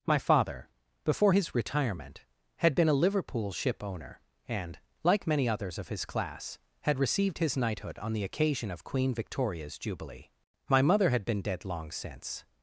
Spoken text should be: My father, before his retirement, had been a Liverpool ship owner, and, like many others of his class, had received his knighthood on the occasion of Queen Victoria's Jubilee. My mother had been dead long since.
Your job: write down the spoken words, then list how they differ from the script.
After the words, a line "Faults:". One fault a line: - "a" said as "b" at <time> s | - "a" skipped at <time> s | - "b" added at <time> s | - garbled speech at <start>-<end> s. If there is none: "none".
My father, before his retirement, had been a Liverpool ship owner, and, like many others of his class, had received his knighthood on the occasion of Queen Victoria's Jubilee. My mother had been dead long since.
Faults:
none